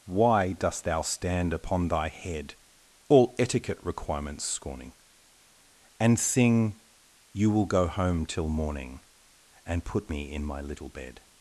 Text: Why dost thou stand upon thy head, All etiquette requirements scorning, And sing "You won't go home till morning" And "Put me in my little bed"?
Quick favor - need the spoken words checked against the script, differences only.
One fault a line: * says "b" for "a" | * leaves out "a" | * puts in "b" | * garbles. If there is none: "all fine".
* says "will" for "won't"